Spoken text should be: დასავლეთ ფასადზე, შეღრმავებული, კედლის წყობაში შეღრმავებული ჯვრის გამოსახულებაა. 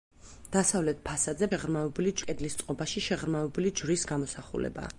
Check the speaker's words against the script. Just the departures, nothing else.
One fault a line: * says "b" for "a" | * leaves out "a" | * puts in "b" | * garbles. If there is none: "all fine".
all fine